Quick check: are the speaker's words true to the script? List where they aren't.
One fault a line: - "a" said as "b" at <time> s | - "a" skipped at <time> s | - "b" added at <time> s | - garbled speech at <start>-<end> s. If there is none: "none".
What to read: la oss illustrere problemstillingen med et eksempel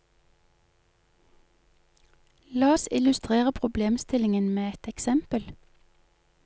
none